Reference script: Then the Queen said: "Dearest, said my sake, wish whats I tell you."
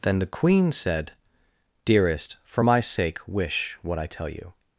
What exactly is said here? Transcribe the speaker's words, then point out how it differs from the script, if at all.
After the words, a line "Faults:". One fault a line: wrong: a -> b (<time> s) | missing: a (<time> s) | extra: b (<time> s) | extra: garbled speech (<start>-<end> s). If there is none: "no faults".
Then the Queen said: "Dearest, for my sake, wish what I tell you."
Faults:
wrong: said -> for (2.4 s)
wrong: whats -> what (3.8 s)